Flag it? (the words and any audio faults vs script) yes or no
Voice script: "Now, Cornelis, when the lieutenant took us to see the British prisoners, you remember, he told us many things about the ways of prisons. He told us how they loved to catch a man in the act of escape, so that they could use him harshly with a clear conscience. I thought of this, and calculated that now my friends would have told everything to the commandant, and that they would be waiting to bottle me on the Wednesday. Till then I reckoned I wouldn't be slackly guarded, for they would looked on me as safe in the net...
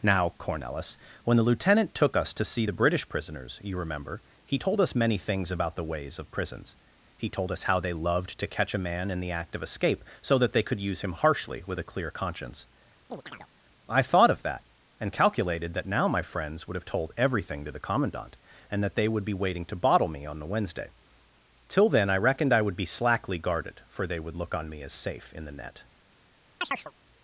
yes